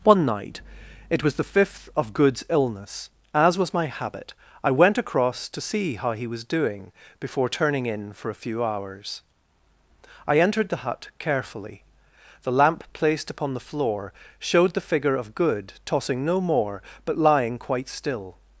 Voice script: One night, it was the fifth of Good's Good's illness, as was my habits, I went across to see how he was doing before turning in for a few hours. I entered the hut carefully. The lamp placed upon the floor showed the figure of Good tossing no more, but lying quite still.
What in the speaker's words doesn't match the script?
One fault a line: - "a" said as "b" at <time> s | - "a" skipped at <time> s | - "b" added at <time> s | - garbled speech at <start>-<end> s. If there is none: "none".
- "Good's" skipped at 2.4 s
- "habits" said as "habit" at 3.9 s